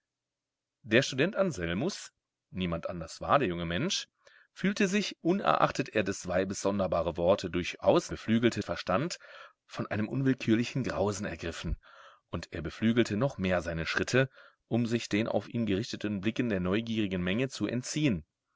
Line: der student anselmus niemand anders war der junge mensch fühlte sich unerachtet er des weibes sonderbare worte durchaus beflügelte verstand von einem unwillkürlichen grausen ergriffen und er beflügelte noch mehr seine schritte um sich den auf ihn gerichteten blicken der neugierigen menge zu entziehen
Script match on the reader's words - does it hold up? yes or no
yes